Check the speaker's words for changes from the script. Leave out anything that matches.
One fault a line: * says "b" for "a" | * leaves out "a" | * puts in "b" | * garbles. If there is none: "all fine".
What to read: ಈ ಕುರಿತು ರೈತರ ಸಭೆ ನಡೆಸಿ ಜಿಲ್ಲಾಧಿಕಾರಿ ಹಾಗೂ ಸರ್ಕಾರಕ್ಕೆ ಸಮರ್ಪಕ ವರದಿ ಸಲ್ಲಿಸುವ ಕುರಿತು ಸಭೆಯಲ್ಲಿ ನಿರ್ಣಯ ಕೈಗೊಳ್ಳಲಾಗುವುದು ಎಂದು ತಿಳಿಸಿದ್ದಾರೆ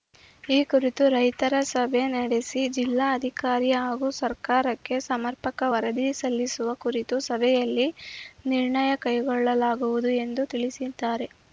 all fine